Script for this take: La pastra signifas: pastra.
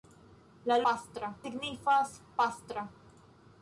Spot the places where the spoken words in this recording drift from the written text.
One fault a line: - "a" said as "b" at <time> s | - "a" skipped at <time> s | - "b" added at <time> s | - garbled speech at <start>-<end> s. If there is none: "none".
none